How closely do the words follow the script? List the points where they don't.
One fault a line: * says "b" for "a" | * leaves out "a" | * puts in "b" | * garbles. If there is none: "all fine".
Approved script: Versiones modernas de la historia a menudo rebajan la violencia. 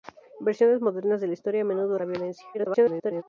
* leaves out "rebajan"
* garbles